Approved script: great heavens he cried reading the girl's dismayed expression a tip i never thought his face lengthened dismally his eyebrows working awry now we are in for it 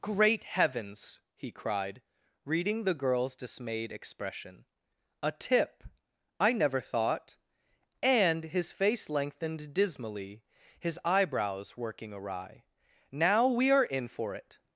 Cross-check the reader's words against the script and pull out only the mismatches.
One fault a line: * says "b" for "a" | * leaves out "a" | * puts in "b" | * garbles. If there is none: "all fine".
* puts in "and"